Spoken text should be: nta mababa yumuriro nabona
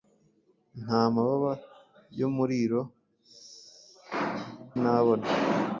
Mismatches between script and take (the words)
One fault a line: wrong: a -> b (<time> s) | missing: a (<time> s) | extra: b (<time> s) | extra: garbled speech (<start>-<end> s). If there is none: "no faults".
no faults